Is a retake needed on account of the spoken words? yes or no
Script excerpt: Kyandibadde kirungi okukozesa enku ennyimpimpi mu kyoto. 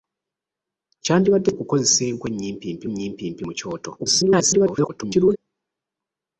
yes